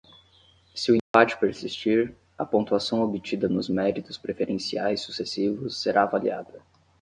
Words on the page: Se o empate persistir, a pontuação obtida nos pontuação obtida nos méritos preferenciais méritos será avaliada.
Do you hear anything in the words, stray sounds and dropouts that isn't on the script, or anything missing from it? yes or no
yes